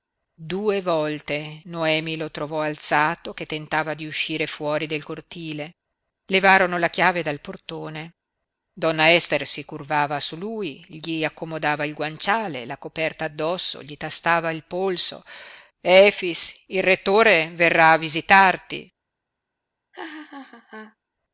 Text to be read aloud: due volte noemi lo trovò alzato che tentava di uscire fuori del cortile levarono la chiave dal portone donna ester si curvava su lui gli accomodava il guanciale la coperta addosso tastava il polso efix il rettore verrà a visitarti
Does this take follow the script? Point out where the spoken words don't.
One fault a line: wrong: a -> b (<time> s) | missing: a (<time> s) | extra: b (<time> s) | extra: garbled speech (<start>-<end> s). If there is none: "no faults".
extra: gli (13.8 s)